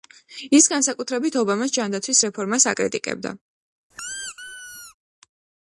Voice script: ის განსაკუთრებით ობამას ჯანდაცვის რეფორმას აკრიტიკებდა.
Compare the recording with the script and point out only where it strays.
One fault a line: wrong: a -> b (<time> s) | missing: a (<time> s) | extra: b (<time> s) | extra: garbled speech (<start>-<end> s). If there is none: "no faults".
no faults